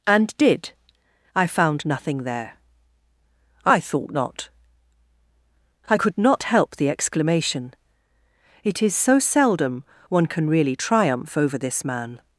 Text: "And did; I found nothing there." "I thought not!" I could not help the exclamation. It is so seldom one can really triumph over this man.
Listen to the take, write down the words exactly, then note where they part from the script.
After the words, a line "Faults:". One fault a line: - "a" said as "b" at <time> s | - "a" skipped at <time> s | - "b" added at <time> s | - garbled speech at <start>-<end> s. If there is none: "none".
"And did; I found nothing there." "I thought not!" I could not help the exclamation. It is so seldom one can really triumph over this man.
Faults:
none